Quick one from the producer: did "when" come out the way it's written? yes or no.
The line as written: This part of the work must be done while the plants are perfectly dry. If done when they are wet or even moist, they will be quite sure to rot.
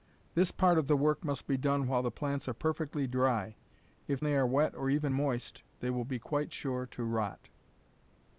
no